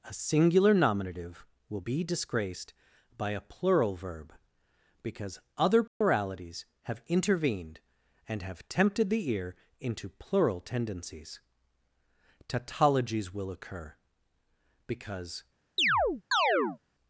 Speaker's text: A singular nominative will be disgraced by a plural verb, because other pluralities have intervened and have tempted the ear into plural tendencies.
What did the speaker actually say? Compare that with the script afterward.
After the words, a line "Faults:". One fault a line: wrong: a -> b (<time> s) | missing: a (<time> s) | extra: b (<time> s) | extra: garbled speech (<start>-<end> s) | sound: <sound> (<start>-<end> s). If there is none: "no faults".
A singular nominative will be disgraced by a plural verb, because other pluralities have intervened and have tempted the ear into plural tendencies. Tautologies will occur, because
Faults:
sound: dropout (5.9-6.0 s)
extra: Tautologies will occur because (12.5 s)
sound: chirp (15.8-16.8 s)